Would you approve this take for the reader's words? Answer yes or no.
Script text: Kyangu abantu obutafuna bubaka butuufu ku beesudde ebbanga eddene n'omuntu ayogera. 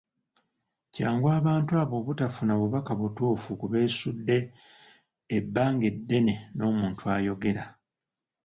no